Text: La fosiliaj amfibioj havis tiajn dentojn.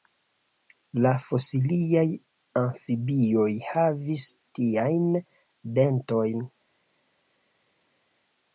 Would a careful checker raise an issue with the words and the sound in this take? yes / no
no